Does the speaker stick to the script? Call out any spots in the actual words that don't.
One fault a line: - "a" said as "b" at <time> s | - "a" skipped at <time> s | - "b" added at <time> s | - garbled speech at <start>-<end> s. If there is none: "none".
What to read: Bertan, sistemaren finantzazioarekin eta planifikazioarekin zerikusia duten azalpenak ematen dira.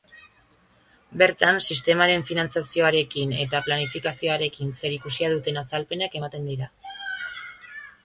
none